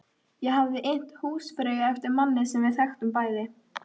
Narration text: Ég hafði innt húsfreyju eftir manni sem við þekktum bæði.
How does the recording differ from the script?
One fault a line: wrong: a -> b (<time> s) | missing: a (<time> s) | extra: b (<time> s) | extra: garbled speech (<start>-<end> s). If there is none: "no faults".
no faults